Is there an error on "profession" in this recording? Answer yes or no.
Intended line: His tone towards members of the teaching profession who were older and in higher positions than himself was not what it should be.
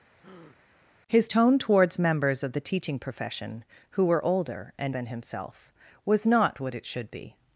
no